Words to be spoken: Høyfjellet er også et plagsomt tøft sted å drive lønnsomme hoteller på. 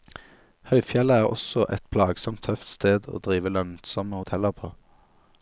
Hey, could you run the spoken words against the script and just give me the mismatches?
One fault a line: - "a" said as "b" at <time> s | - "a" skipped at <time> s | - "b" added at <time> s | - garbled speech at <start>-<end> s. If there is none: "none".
none